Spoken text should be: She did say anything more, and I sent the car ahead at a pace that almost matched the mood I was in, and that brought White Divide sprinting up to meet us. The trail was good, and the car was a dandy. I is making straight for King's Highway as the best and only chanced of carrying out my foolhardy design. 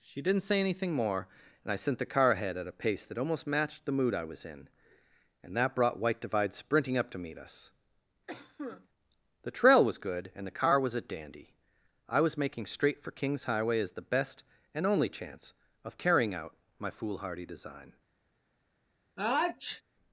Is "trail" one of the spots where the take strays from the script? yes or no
no